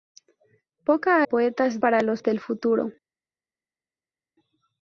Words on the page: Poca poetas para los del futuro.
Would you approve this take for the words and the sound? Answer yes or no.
yes